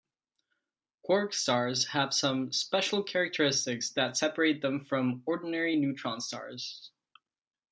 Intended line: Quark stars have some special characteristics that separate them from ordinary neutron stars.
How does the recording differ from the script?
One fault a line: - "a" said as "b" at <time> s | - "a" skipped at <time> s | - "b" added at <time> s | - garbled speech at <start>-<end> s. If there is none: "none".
none